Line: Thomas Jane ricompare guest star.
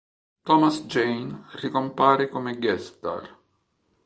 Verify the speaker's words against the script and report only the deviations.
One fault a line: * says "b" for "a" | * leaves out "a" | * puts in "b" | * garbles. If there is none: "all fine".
* puts in "come"